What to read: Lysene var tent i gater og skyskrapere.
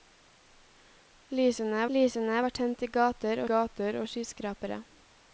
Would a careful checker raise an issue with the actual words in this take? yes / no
yes